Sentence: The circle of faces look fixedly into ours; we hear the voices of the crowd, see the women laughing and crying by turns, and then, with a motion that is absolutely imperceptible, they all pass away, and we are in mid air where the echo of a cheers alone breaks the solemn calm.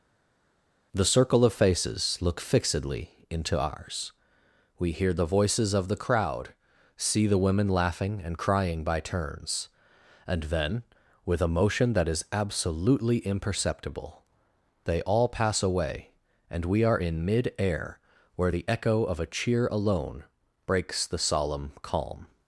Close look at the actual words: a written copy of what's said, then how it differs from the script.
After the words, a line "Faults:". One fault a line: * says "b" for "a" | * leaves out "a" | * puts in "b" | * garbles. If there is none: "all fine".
The circle of faces look fixedly into ours; we hear the voices of the crowd, see the women laughing and crying by turns, and then, with a motion that is absolutely imperceptible, they all pass away, and we are in mid air where the echo of a cheer alone breaks the solemn calm.
Faults:
* says "cheer" for "cheers"